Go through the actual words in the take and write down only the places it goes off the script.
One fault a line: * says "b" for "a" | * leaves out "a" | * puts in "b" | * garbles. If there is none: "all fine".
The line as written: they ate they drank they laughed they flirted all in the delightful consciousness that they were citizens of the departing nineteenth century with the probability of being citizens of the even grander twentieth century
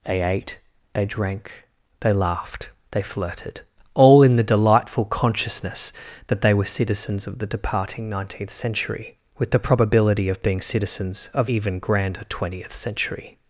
* leaves out "the"